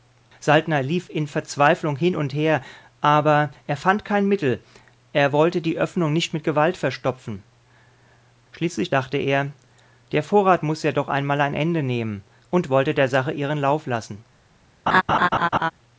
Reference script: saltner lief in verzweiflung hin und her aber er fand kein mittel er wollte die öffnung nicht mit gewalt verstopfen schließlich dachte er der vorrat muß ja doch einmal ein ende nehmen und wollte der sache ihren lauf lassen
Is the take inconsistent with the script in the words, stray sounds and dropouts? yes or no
yes